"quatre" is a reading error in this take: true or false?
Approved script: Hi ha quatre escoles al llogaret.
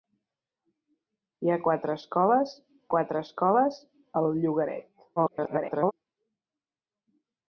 false